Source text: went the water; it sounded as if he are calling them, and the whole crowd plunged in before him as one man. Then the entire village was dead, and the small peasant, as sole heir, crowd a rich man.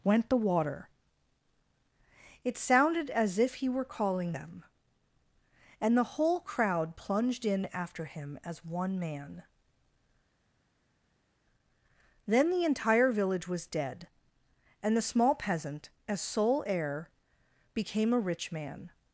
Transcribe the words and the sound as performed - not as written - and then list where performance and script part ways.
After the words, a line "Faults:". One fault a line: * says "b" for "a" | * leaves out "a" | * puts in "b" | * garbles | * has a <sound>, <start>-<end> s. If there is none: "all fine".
went the water; it sounded as if he were calling them, and the whole crowd plunged in after him as one man. Then the entire village was dead, and the small peasant, as sole heir, became a rich man.
Faults:
* says "were" for "are"
* says "after" for "before"
* says "became" for "crowd"